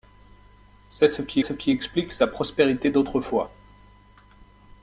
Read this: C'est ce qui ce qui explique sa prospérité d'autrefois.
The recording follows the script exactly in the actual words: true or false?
true